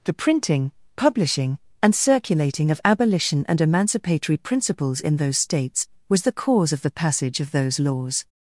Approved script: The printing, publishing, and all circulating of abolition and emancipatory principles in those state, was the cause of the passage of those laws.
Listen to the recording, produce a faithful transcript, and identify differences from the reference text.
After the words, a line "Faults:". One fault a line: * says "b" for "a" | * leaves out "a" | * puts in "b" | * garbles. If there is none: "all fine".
The printing, publishing, and circulating of abolition and emancipatory principles in those states, was the cause of the passage of those laws.
Faults:
* leaves out "all"
* says "states" for "state"